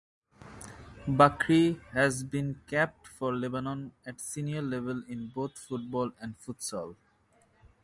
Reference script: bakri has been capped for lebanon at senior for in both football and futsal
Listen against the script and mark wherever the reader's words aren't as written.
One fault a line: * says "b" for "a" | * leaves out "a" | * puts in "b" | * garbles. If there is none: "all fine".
* says "level" for "for"